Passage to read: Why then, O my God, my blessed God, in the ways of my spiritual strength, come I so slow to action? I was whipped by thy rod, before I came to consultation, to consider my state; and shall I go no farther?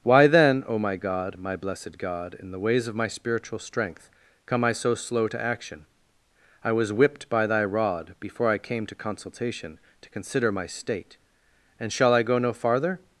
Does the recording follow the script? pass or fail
pass